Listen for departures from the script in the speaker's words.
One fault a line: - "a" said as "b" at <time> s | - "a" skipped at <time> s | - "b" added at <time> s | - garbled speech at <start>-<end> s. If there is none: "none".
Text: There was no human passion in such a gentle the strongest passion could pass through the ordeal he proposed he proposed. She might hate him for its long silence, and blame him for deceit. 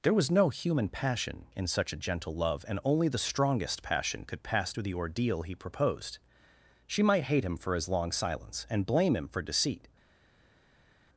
- "love and only" added at 2.3 s
- "he proposed" skipped at 6.2 s
- "its" said as "his" at 7.7 s